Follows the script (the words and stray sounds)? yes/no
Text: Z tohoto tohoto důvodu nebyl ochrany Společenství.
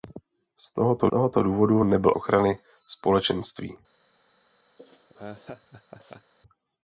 no